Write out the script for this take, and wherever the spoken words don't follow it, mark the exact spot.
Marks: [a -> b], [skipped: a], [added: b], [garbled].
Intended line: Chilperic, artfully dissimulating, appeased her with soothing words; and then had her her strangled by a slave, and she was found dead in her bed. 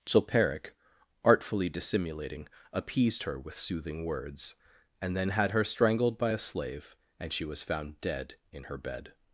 Chilperic, artfully dissimulating, appeased her with soothing words; and then had her [skipped: her] strangled by a slave, and she was found dead in her bed.